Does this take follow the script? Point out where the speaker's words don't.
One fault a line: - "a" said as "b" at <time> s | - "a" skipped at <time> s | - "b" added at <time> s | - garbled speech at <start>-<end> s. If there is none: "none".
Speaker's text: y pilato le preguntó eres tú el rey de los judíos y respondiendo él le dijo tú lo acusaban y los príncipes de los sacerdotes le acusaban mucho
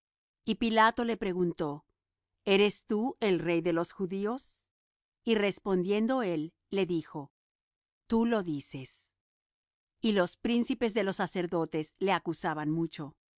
- "acusaban" said as "dices" at 8.4 s